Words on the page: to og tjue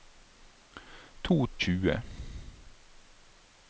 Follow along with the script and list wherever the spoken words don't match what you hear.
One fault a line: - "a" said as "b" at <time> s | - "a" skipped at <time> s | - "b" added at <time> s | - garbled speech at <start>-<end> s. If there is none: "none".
none